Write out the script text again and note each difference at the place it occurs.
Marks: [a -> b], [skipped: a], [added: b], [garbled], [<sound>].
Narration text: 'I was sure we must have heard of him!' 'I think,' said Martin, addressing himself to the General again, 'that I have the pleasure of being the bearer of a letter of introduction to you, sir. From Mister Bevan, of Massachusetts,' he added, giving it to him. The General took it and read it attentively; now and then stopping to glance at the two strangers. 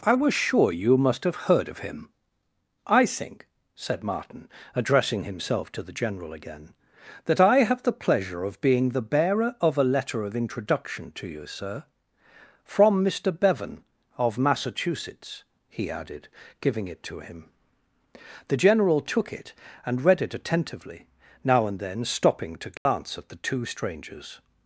'I was sure [we -> you] must have heard of him!' 'I think,' said Martin, addressing himself to the General again, 'that I have the pleasure of being the bearer of a letter of introduction to you, sir. From Mister Bevan, of Massachusetts,' he added, giving it to him. The General took it and read it attentively; now and then stopping to glance [dropout] at the two strangers.